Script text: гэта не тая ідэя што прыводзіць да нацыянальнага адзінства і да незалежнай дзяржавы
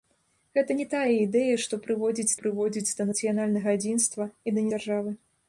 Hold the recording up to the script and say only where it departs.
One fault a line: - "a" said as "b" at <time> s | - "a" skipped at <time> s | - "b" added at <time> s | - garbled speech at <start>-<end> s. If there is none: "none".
- "прыводзіць" added at 2.4 s
- "незалежнай" skipped at 4.6 s